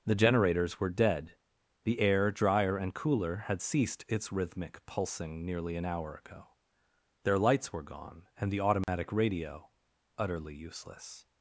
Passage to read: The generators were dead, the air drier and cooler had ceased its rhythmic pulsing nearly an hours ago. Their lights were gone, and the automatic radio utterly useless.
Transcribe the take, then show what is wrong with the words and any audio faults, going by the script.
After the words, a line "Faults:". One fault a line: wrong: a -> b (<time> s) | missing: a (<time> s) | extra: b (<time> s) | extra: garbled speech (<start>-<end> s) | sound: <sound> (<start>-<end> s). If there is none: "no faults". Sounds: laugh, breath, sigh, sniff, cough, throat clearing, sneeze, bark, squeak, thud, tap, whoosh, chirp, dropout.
The generators were dead, the air drier and cooler had ceased its rhythmic pulsing nearly an hour ago. Their lights were gone, and the automatic radio utterly useless.
Faults:
wrong: hours -> hour (5.9 s)
sound: dropout (8.8-8.9 s)